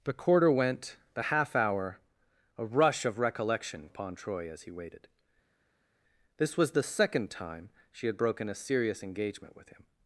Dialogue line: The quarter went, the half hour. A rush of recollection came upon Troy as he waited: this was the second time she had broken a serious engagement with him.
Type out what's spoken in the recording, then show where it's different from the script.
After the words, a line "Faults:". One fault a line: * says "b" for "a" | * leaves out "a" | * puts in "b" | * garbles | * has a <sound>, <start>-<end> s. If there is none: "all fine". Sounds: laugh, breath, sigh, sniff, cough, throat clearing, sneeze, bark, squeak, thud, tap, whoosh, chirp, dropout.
The quarter went, the half hour. A rush of recollection upon Troy as he waited: this was the second time she had broken a serious engagement with him.
Faults:
* leaves out "came"